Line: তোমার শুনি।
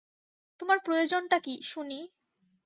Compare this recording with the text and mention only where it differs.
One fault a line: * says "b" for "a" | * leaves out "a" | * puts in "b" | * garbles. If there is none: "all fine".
* puts in "প্রয়োজনটা কী"